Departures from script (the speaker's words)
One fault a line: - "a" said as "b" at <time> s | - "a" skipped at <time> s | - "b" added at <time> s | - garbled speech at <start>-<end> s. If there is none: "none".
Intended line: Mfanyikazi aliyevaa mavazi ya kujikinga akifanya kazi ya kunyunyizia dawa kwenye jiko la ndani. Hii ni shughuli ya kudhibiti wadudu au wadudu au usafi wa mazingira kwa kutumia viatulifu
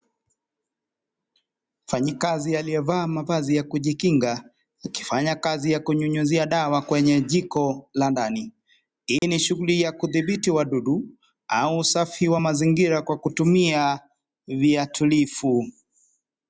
- "wadudu au" skipped at 11.8 s